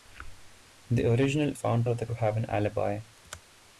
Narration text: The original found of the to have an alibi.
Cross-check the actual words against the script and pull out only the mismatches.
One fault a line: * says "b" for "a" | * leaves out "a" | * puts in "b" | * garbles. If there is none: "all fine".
all fine